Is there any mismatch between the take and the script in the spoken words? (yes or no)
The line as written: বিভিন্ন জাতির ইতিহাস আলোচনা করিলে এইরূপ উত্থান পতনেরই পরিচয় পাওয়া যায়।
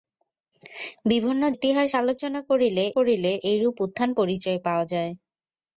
yes